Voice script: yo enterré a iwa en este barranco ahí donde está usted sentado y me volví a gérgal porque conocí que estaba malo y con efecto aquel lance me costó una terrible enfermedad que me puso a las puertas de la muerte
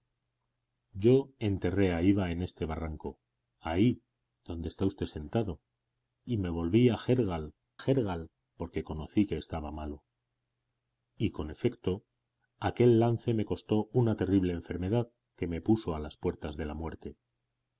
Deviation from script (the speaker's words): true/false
true